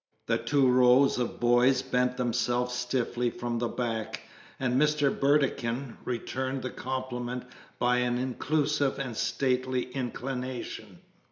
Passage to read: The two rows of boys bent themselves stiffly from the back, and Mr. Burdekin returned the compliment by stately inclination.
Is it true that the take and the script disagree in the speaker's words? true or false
true